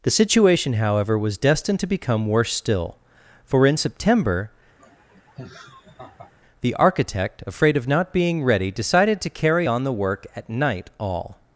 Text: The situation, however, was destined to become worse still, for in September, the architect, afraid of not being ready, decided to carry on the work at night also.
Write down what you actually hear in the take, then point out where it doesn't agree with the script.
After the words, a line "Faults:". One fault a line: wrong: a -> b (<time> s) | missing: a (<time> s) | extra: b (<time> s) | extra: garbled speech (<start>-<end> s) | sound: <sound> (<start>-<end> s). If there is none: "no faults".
The situation, however, was destined to become worse still, for in September, the architect, afraid of not being ready, decided to carry on the work at night all.
Faults:
sound: laugh (4.8-6.3 s)
wrong: also -> all (11.0 s)